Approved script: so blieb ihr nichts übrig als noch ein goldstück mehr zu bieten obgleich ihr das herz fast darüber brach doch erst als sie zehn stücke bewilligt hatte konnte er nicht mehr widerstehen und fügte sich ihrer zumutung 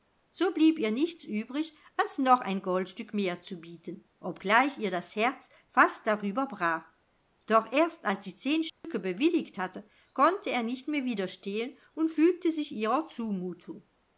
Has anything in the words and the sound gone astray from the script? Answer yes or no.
yes